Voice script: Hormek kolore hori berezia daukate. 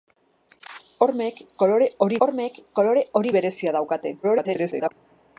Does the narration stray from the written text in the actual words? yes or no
yes